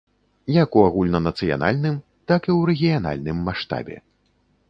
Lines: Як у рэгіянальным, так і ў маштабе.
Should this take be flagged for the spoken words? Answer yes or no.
yes